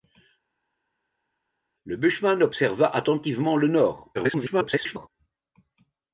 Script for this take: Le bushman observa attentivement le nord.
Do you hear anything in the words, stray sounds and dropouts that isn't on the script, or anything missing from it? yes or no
yes